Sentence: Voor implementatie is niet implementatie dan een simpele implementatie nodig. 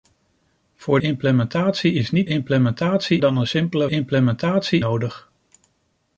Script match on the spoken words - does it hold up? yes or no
yes